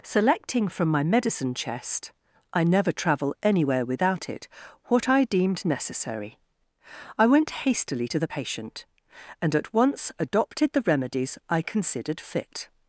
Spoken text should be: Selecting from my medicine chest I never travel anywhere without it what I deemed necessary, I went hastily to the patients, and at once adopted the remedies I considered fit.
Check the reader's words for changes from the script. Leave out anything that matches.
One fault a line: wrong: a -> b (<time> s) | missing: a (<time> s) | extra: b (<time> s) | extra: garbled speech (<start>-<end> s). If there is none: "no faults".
wrong: patients -> patient (8.2 s)